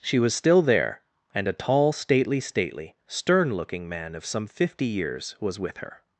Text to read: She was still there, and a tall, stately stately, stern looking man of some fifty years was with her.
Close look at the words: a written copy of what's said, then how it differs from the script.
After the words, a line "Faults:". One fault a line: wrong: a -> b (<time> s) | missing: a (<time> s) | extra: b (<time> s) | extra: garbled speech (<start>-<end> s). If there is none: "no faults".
She was still there, and a tall, stately stately, stern looking man of some fifty years was with her.
Faults:
no faults